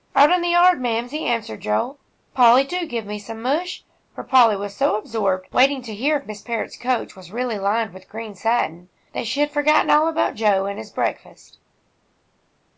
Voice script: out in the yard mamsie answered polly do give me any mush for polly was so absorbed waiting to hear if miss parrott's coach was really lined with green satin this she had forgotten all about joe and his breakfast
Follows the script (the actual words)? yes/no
no